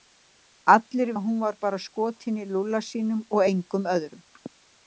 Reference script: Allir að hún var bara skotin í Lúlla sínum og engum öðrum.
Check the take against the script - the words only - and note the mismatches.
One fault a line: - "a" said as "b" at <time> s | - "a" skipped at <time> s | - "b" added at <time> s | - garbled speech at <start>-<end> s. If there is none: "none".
none